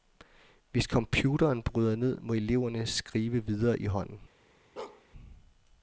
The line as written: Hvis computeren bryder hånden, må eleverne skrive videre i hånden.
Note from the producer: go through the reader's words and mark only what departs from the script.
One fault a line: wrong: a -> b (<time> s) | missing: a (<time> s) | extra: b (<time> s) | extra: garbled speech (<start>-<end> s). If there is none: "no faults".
wrong: hånden -> ned (1.9 s)